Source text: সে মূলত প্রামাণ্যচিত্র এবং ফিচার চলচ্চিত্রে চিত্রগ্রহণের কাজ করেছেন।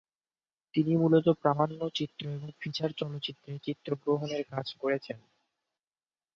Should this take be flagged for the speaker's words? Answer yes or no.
yes